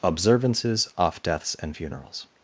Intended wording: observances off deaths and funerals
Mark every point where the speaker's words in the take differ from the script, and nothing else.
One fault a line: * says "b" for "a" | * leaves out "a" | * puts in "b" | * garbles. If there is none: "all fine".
all fine